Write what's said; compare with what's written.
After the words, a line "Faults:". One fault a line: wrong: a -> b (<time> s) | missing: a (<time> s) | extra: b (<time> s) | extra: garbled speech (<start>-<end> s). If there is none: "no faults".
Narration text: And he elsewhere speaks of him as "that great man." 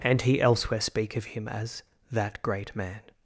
And he elsewhere speak of him as "that great man."
Faults:
wrong: speaks -> speak (0.8 s)